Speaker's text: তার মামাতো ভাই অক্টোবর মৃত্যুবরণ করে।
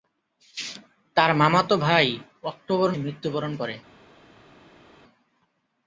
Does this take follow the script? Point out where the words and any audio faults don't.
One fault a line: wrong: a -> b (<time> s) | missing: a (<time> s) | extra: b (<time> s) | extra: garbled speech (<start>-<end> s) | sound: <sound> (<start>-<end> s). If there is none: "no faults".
no faults